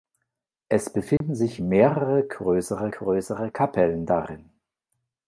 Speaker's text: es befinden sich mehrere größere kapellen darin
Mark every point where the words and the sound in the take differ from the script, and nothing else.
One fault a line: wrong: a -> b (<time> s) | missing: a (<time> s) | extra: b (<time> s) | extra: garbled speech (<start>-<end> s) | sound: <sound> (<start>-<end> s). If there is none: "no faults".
sound: dropout (1.2-1.2 s)
extra: größere (2.9 s)